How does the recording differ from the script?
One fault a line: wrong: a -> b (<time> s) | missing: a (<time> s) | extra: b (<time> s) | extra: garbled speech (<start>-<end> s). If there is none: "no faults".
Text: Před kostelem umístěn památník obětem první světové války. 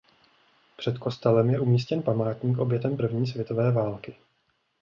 extra: je (1.5 s)